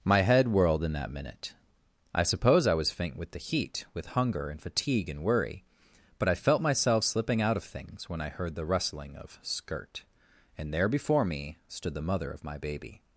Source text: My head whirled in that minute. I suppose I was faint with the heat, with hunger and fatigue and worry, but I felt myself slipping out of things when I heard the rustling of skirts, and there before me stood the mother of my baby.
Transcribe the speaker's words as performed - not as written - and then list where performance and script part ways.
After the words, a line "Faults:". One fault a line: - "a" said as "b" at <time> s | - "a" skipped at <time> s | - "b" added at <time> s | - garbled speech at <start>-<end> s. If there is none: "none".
My head whirled in that minute. I suppose I was faint with the heat, with hunger and fatigue and worry, but I felt myself slipping out of things when I heard the rustling of skirt, and there before me stood the mother of my baby.
Faults:
- "skirts" said as "skirt" at 9.4 s